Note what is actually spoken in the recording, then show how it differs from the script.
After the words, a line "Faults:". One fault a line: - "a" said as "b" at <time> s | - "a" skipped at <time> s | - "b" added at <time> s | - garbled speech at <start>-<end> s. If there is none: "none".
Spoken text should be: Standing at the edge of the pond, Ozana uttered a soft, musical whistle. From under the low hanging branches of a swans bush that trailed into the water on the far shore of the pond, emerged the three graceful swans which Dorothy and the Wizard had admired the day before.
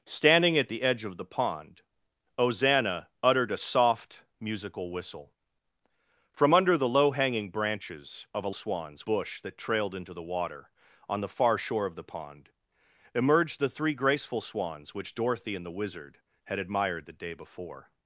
Standing at the edge of the pond, Ozana uttered a soft, musical whistle. From under the low hanging branches of a swans bush that trailed into the water on the far shore of the pond, emerged the three graceful swans which Dorothy and the Wizard had admired the day before.
Faults:
none